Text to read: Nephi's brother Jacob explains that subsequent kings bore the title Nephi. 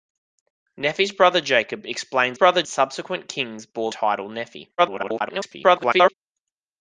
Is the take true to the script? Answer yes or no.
no